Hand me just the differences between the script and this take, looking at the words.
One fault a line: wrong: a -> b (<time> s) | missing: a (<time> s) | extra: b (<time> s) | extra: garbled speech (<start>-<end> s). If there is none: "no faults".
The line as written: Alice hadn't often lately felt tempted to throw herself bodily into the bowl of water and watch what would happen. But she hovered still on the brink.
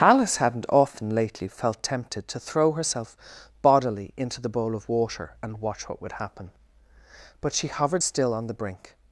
no faults